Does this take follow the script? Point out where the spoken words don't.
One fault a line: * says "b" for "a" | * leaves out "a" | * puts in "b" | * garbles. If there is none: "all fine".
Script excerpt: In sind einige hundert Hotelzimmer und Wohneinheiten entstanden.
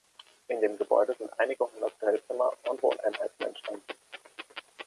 * puts in "dem Gebäude"